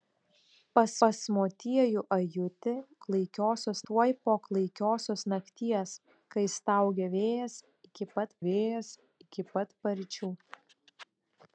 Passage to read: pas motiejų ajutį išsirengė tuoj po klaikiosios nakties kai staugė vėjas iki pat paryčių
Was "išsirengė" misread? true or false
true